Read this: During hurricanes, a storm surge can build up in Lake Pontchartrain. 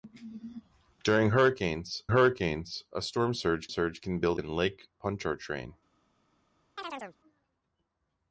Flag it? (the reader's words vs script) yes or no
yes